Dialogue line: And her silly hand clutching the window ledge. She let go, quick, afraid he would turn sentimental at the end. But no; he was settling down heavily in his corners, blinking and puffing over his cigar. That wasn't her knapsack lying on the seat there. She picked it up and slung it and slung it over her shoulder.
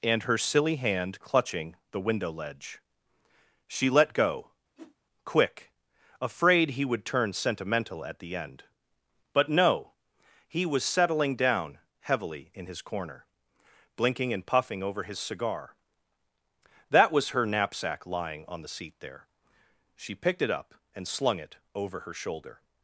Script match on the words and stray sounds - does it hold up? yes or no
no